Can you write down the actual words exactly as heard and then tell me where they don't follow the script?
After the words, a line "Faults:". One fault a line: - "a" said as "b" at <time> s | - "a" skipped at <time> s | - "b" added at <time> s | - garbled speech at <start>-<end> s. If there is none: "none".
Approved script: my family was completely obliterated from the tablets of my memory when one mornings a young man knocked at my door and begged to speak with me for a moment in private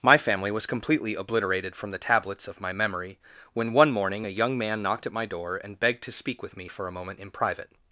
my family was completely obliterated from the tablets of my memory when one morning a young man knocked at my door and begged to speak with me for a moment in private
Faults:
- "mornings" said as "morning" at 3.9 s